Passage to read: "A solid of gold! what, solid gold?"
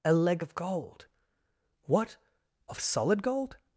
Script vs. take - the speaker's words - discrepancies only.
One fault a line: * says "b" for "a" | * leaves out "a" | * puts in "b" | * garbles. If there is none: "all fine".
* says "leg" for "solid"
* puts in "of"